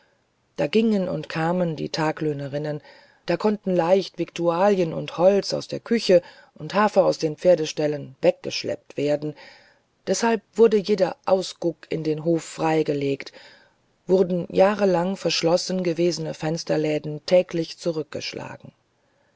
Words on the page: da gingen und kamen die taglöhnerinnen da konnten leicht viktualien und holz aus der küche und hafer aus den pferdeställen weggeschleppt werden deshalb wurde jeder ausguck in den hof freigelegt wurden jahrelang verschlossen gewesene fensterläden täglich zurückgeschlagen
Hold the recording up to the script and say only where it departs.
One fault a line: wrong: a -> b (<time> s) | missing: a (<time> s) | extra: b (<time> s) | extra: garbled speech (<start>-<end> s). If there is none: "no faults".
no faults